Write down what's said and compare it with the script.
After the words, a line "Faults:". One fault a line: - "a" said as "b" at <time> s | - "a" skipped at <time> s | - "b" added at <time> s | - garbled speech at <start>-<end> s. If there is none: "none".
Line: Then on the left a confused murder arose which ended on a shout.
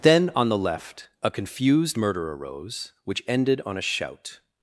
Then on the left a confused murder arose which ended on a shout.
Faults:
none